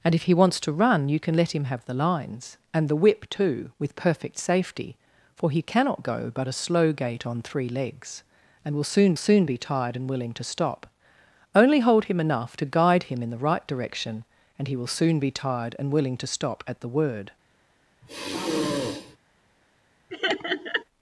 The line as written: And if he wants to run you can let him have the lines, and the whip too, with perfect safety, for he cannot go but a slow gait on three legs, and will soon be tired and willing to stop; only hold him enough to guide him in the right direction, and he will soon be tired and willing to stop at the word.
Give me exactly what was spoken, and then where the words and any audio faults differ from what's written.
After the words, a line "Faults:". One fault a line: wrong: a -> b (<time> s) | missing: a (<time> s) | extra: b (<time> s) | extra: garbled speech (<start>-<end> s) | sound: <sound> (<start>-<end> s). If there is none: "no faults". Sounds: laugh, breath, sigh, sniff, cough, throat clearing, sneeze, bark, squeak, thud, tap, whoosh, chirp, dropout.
And if he wants to run you can let him have the lines, and the whip too, with perfect safety, for he cannot go but a slow gait on three legs, and will soon soon be tired and willing to stop; only hold him enough to guide him in the right direction, and he will soon be tired and willing to stop at the word.
Faults:
extra: soon (9.2 s)
sound: sigh (18.0-19.2 s)
sound: laugh (20.1-20.8 s)